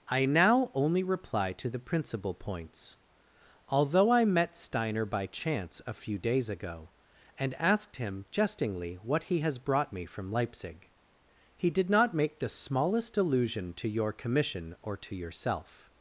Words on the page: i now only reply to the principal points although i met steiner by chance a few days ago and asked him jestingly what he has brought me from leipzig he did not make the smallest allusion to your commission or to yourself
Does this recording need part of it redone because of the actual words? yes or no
no